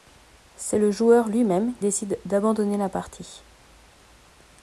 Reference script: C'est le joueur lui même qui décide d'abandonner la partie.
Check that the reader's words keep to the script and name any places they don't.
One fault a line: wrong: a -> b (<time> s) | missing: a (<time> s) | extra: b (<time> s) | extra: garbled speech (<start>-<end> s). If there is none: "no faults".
missing: qui (1.8 s)